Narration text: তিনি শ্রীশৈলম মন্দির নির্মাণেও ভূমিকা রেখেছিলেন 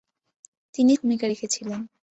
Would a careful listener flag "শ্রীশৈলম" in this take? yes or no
yes